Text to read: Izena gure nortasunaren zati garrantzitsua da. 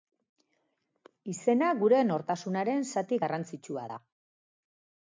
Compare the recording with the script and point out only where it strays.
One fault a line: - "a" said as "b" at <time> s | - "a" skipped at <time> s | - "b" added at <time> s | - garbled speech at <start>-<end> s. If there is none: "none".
none